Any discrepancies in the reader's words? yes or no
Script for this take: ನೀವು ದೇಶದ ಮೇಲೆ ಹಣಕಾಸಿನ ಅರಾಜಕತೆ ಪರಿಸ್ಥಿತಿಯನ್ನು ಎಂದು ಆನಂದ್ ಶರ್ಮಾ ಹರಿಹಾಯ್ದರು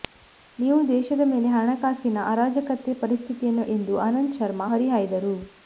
no